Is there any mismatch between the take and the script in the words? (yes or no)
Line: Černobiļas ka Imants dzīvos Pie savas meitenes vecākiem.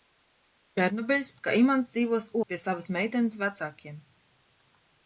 no